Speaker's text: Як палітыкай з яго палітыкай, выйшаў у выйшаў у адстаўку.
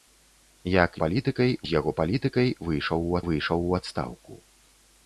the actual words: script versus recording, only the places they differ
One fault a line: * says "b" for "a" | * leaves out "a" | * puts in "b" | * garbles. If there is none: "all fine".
all fine